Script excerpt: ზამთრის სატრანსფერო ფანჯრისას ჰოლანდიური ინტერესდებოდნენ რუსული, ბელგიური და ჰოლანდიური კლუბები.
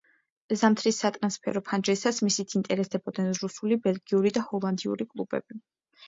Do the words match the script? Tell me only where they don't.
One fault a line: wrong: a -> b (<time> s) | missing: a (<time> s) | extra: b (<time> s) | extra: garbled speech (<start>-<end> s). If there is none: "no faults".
wrong: ჰოლანდიური -> მისით (2.3 s)